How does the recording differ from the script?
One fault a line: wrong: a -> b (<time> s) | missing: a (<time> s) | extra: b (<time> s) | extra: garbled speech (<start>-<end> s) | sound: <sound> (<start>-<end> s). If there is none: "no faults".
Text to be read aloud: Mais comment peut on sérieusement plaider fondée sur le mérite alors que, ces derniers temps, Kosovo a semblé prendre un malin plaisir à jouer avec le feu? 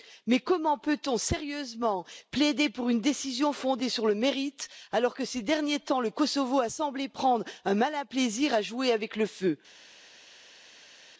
extra: pour une décision (2.7 s)
extra: le (6.0 s)